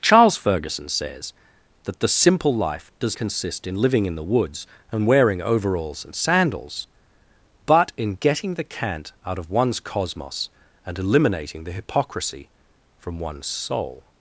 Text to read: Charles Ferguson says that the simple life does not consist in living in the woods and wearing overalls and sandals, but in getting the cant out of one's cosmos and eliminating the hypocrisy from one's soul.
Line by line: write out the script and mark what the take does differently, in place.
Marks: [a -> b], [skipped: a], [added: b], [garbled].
Charles Ferguson says that the simple life does [skipped: not] consist in living in the woods and wearing overalls and sandals, but in getting the cant out of one's cosmos and eliminating the hypocrisy from one's soul.